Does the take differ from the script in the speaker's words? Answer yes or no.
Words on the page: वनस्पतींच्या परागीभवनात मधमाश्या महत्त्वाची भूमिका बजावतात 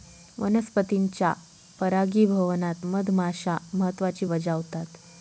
yes